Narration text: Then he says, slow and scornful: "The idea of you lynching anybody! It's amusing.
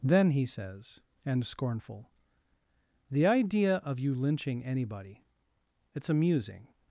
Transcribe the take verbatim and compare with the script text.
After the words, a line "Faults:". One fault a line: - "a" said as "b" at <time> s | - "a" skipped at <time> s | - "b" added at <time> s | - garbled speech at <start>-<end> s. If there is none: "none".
Then he says, and scornful: "The idea of you lynching anybody! It's amusing.
Faults:
- "slow" skipped at 1.0 s